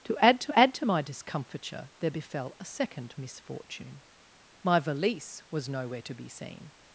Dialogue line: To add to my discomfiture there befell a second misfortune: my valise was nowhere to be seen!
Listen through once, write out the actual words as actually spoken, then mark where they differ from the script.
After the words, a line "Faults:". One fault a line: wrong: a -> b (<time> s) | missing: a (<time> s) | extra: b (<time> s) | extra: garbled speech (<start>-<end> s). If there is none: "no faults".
To add to add to my discomfiture there befell a second misfortune: my valise was nowhere to be seen!
Faults:
extra: add to (0.5 s)